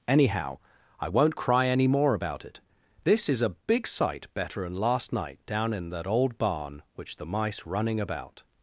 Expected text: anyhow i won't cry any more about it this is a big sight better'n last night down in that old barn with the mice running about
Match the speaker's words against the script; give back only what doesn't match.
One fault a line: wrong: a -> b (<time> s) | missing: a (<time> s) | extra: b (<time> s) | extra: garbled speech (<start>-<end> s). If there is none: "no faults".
wrong: with -> which (6.9 s)